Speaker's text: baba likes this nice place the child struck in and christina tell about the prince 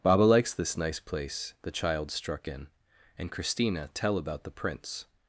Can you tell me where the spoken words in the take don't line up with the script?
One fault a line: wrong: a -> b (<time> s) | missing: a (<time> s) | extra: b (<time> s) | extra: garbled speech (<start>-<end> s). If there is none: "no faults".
no faults